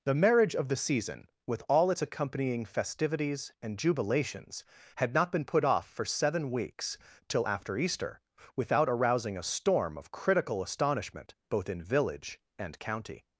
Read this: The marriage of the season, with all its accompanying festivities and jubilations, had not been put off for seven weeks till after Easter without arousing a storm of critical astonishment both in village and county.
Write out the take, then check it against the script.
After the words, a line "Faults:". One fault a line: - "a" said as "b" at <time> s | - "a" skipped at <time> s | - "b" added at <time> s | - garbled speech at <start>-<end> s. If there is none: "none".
The marriage of the season, with all its accompanying festivities and jubilations, had not been put off for seven weeks till after Easter without arousing a storm of critical astonishment both in village and county.
Faults:
none